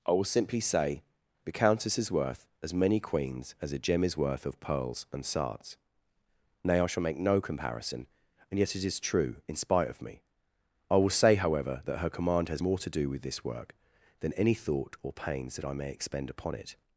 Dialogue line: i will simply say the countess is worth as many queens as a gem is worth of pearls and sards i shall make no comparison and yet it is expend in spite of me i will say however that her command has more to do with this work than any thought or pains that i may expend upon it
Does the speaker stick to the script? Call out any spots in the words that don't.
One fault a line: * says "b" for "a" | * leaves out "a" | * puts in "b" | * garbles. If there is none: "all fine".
* puts in "nay"
* says "true" for "expend"